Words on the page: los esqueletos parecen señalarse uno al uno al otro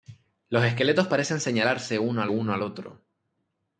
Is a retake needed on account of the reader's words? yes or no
no